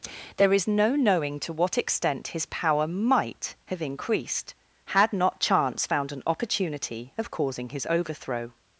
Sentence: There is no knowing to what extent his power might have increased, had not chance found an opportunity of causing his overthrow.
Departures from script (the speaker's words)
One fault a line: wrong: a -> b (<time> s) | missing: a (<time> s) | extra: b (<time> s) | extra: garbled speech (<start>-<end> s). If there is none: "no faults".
no faults